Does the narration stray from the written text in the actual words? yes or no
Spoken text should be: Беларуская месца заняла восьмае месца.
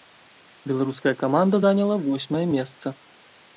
yes